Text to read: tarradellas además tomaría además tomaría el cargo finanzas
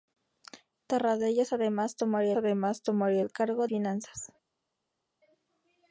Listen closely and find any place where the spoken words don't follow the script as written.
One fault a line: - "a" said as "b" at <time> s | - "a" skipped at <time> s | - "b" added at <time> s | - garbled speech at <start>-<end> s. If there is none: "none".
none